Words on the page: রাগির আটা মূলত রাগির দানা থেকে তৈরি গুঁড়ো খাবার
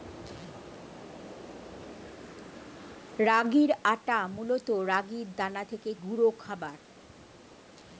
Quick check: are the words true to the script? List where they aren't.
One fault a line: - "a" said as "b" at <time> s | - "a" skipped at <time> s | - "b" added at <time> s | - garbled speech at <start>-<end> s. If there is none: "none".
- "তৈরি" skipped at 5.9 s